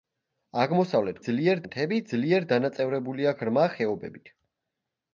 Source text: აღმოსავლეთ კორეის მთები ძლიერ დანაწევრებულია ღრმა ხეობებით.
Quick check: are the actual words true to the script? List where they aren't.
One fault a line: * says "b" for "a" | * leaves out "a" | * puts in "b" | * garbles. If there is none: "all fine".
* says "ძლიერ" for "კორეის"